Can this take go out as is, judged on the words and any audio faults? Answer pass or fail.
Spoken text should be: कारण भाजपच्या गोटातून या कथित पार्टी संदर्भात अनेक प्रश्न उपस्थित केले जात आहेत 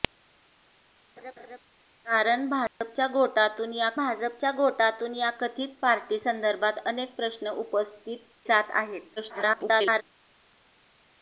fail